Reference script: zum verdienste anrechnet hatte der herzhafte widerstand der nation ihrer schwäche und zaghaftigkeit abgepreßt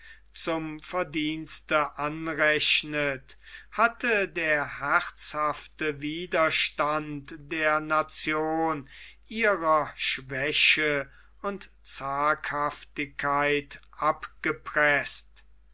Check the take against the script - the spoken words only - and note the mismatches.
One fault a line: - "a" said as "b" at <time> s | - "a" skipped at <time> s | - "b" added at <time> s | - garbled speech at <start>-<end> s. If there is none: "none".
none